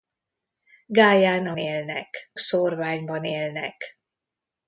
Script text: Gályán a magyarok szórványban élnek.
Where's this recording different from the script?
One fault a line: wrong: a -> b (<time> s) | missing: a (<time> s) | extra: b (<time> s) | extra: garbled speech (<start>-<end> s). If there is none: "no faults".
wrong: magyarok -> élnek (1.6 s)